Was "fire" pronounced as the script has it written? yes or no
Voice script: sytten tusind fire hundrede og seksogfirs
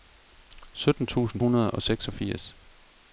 no